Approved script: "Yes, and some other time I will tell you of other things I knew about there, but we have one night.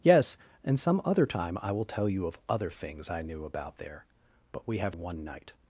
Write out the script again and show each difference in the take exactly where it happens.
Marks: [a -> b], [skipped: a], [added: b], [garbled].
"Yes, and some other time I will tell you of other things I knew about there, but we have one night.